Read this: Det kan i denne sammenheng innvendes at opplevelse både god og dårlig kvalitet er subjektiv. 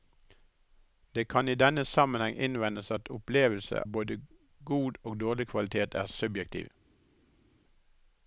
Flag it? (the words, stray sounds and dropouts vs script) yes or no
no